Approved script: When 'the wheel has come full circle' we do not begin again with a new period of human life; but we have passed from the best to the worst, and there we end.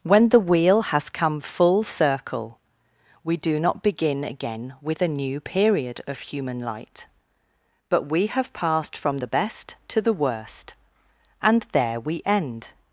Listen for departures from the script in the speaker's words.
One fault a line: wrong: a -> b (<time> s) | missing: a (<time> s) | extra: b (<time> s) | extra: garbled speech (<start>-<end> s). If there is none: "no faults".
wrong: life -> light (6.6 s)